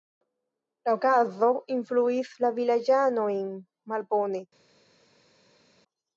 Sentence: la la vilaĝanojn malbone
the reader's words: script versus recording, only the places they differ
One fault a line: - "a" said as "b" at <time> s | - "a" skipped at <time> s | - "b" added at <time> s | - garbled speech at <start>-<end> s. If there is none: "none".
- "okazo influis" added at 1.0 s